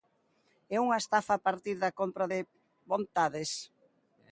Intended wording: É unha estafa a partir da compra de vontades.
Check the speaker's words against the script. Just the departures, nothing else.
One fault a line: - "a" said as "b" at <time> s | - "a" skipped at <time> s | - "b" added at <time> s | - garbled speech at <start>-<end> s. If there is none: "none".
none